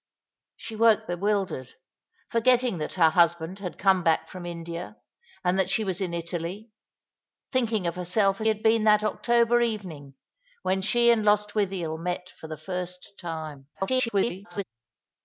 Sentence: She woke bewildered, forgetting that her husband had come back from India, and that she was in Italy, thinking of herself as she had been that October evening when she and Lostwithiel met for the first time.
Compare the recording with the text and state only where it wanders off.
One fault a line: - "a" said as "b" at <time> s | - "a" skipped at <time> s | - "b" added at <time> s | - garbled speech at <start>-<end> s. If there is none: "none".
- "she" skipped at 8.5 s
- garbled speech at 13.7-14.6 s